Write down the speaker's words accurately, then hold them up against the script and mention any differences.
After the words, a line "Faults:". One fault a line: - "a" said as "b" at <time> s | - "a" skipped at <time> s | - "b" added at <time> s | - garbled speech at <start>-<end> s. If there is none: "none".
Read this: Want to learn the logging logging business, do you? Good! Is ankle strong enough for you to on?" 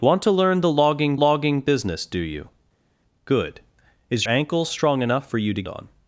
Want to learn the logging logging business, do you? Good! Is ankle strong enough for you to on?"
Faults:
none